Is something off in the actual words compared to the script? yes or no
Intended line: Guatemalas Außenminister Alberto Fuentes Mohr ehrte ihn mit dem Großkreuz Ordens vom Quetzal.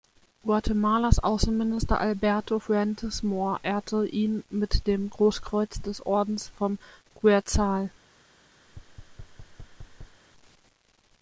yes